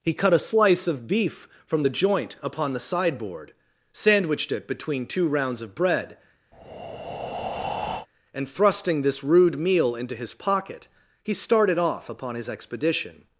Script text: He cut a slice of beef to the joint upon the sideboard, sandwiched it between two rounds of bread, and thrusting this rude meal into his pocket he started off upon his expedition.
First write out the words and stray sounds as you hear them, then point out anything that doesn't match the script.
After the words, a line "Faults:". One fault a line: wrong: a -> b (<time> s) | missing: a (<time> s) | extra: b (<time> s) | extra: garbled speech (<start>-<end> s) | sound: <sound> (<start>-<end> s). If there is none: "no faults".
He cut a slice of beef from the joint upon the sideboard, sandwiched it between two rounds of bread, and thrusting this rude meal into his pocket he started off upon his expedition.
Faults:
wrong: to -> from (1.6 s)
sound: breath (6.5-8.1 s)